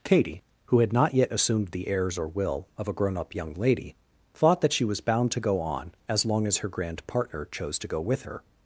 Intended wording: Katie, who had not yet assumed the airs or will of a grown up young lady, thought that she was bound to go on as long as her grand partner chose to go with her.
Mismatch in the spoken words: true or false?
false